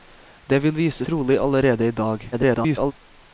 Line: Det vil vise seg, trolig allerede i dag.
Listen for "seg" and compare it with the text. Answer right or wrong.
wrong